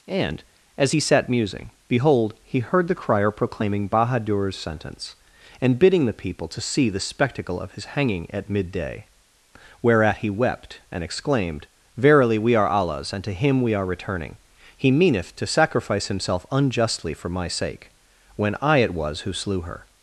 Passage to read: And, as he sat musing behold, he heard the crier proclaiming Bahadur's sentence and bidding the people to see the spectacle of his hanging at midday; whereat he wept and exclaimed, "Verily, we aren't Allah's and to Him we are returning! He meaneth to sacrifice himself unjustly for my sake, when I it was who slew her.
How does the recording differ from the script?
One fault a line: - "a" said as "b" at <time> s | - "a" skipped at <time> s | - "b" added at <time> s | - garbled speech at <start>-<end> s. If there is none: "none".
- "aren't" said as "are" at 12.5 s